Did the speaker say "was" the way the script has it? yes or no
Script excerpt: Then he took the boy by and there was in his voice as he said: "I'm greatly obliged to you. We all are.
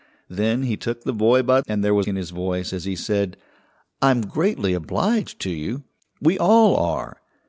yes